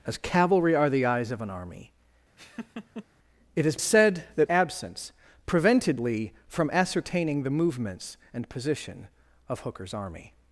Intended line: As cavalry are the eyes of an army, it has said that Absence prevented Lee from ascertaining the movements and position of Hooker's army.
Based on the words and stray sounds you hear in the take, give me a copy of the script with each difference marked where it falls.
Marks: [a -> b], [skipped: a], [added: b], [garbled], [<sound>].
As cavalry are the eyes of an army, [laugh] it has said that Absence prevented Lee from ascertaining the movements and position of Hooker's army.